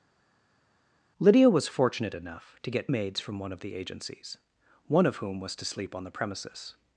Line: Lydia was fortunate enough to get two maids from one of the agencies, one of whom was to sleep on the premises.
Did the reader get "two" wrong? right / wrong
wrong